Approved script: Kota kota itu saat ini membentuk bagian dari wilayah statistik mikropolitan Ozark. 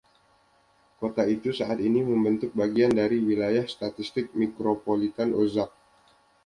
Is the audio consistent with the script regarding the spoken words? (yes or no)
no